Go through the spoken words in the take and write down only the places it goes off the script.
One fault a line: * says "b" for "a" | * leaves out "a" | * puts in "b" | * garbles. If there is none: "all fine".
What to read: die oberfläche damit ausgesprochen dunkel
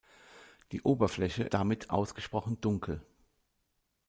all fine